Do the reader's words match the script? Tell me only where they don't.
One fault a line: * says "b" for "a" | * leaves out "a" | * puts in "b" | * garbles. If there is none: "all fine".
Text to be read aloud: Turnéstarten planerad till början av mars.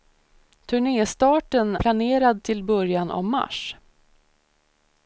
all fine